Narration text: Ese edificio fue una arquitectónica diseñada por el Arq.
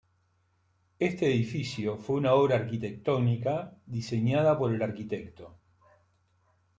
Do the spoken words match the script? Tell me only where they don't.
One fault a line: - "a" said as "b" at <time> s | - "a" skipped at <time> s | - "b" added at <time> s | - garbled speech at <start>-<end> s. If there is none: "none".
- "Ese" said as "Este" at 1.0 s
- "obra" added at 2.3 s